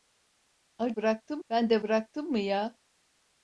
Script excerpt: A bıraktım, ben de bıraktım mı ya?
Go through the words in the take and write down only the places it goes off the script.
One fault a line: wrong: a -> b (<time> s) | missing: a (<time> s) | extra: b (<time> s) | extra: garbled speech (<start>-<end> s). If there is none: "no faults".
no faults